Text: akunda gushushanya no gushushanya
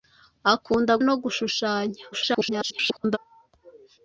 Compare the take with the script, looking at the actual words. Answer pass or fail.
fail